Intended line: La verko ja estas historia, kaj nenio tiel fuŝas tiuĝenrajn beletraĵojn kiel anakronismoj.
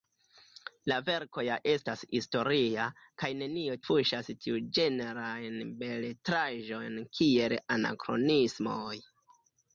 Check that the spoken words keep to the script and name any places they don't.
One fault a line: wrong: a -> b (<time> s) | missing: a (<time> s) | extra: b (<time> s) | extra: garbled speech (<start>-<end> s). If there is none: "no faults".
missing: tiel (3.8 s)